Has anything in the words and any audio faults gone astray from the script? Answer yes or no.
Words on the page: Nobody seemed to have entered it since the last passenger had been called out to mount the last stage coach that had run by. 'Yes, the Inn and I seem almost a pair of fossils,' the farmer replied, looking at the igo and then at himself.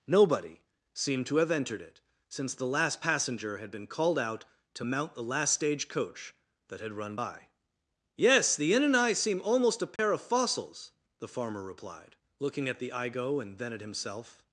yes